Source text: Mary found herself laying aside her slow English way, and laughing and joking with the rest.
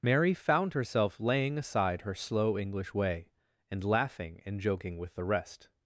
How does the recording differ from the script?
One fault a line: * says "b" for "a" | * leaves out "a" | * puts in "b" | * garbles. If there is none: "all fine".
all fine